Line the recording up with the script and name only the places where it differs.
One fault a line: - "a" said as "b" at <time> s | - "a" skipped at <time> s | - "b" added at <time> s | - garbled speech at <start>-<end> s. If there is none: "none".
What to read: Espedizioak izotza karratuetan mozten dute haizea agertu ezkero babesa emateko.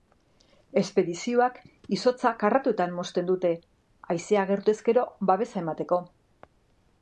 none